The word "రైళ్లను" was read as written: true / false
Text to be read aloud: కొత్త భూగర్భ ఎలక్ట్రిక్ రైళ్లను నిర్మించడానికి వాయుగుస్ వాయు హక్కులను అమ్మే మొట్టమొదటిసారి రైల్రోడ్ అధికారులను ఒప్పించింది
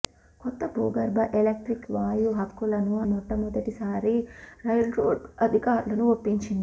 false